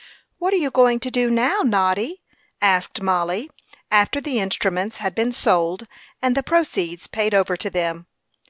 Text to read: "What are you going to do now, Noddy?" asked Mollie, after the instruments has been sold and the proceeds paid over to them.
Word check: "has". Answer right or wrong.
wrong